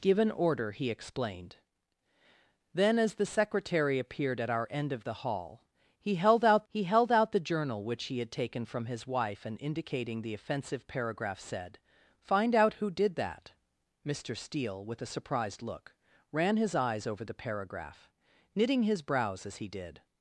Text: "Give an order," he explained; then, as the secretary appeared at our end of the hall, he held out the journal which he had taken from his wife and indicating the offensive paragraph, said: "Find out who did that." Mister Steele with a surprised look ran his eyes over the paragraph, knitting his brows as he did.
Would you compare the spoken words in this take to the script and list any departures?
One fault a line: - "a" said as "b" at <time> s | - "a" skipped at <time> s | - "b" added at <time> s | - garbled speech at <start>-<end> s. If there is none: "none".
- "he held out" added at 6.7 s